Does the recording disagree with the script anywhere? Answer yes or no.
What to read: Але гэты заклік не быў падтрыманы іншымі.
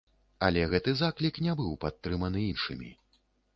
no